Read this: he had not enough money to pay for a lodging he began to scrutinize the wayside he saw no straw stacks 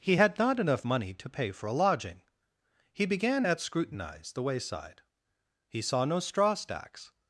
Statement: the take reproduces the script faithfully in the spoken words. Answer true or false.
false